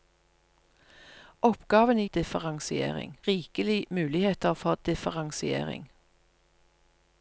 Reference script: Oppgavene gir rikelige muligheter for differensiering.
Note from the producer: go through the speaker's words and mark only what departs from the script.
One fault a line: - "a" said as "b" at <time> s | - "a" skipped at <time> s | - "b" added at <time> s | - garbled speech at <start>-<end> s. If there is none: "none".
- "gir" said as "differensiering" at 2.1 s